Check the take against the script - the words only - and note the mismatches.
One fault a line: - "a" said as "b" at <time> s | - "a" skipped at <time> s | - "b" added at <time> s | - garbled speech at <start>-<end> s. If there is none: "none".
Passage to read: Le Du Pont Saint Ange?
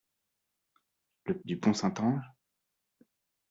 none